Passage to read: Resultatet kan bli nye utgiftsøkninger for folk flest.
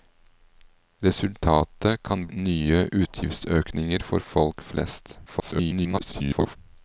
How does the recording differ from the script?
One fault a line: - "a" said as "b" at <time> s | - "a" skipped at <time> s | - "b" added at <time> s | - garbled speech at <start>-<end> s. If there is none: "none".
- "bli" skipped at 2.3 s
- garbled speech at 5.3-6.6 s